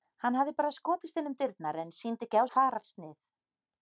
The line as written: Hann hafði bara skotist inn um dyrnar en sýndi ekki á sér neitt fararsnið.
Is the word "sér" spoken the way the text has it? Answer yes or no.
no